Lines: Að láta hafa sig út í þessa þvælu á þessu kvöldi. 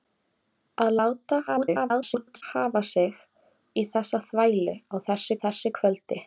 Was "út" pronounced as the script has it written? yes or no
no